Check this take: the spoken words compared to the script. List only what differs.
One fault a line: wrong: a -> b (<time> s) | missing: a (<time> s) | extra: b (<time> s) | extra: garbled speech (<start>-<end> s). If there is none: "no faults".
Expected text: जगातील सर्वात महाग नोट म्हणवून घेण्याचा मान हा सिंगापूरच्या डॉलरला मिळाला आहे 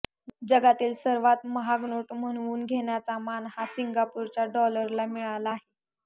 no faults